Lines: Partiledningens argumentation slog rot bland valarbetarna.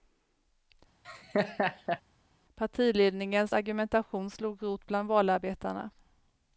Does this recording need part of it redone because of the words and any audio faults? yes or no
yes